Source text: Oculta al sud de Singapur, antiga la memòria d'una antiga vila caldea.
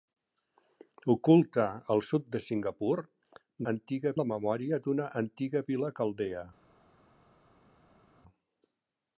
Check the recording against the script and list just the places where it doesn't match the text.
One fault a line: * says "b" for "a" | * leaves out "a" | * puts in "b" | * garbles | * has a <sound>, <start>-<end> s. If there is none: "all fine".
all fine